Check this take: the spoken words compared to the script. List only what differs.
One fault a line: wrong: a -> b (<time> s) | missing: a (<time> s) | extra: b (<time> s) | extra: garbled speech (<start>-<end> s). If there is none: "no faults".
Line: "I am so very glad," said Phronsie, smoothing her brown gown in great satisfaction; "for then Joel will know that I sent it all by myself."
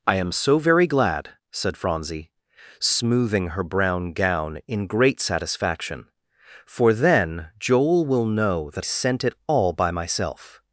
missing: I (8.8 s)